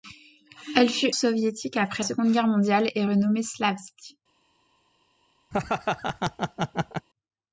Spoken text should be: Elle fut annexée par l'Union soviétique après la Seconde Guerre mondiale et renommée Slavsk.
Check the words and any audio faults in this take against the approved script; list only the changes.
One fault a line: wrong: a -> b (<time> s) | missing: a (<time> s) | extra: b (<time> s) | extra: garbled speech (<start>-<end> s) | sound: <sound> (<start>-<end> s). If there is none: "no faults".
missing: annexée par l'Union (1.1 s)
missing: la (2.0 s)
sound: laugh (5.5-7.1 s)